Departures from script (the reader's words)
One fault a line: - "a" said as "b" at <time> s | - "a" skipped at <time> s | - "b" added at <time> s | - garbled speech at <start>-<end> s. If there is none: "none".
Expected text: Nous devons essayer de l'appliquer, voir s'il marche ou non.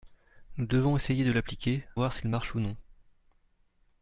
none